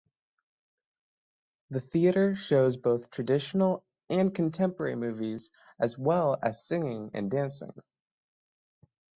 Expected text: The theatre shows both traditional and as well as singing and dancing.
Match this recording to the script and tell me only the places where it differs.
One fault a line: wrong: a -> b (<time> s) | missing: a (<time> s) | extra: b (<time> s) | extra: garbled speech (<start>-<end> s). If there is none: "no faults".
extra: contemporary movies (4.3 s)